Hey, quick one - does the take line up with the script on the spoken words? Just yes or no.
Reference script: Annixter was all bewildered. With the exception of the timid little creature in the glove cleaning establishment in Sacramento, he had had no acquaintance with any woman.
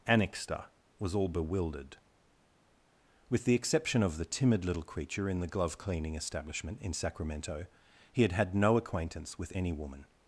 yes